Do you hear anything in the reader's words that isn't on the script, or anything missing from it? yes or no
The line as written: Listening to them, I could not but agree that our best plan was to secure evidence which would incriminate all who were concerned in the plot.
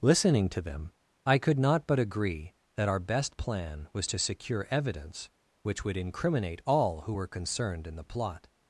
no